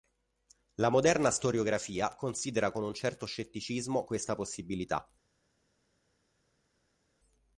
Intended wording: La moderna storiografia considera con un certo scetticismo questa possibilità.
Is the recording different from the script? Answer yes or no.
no